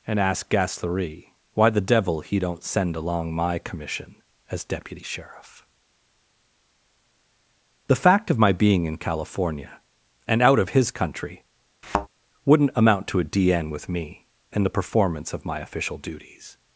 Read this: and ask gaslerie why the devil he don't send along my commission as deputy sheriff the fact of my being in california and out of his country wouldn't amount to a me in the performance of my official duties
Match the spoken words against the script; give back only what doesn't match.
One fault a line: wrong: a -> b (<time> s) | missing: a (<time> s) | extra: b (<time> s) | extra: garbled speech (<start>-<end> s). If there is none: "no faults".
extra: d n with (13.2 s)